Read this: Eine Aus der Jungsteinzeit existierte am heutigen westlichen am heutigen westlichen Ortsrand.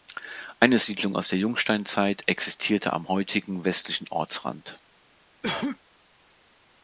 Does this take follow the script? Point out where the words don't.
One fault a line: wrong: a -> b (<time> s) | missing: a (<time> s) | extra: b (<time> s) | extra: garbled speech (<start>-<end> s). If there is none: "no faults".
extra: Siedlung (0.8 s)
missing: am heutigen westlichen (4.1 s)